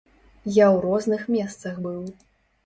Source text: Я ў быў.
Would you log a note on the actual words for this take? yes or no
yes